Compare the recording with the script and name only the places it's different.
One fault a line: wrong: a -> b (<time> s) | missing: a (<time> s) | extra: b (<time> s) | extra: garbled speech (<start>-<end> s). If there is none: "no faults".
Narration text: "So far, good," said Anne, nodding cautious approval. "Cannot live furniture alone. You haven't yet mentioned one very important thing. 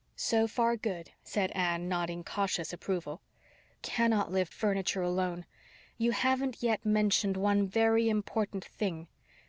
no faults